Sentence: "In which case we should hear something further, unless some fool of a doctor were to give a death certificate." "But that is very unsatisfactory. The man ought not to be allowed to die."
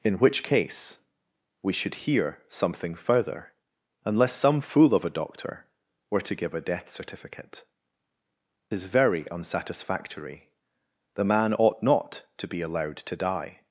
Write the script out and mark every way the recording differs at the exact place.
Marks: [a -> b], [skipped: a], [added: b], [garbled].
"In which case we should hear something further, unless some fool of a doctor were to give a death certificate." [skipped: "But that] is very unsatisfactory. The man ought not to be allowed to die."